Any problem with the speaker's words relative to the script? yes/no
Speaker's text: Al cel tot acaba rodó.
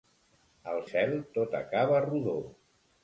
no